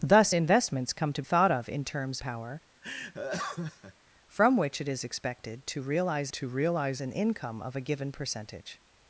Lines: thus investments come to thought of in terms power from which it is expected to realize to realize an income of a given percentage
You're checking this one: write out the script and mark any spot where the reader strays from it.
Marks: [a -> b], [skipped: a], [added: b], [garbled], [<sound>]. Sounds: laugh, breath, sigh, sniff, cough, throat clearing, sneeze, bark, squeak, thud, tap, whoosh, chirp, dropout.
thus investments come to thought of in terms power [laugh] from which it is expected to realize to realize an income of a given percentage